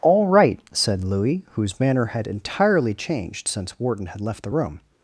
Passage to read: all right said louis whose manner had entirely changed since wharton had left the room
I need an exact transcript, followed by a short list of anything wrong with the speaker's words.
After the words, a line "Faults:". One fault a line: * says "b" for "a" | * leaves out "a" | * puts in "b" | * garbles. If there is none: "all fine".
all right said louis whose manner had entirely changed since wharton had left the room
Faults:
all fine